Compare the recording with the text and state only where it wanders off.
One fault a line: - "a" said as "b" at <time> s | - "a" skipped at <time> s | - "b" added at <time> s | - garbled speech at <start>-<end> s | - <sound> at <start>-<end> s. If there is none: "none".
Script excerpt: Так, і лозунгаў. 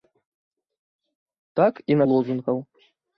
none